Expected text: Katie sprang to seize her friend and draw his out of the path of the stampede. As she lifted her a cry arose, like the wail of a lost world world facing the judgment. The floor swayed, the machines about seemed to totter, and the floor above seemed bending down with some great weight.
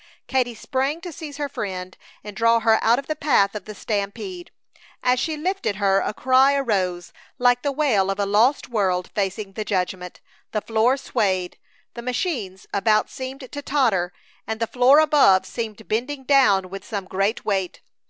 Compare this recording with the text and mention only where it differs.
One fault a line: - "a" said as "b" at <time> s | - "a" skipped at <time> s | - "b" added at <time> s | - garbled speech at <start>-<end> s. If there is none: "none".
- "his" said as "her" at 2.6 s
- "world" skipped at 9.1 s